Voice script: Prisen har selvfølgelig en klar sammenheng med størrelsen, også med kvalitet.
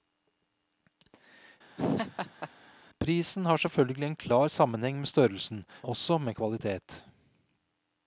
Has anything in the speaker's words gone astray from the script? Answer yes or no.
no